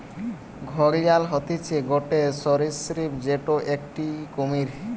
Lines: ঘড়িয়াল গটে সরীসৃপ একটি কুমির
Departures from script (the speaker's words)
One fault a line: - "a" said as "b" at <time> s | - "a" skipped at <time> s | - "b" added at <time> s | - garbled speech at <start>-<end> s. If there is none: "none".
- "হতিছে" added at 1.3 s
- "যেটো" added at 3.2 s